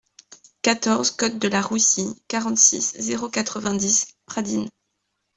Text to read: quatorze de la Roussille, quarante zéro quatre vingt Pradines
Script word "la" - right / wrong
right